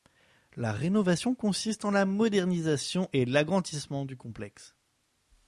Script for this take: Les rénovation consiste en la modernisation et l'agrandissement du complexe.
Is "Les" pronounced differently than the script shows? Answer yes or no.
yes